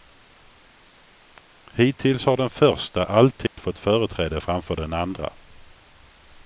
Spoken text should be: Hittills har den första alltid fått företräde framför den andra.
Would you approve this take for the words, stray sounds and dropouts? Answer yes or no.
no